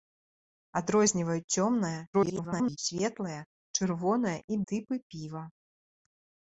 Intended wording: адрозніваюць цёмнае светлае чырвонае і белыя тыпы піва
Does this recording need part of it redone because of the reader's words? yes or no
yes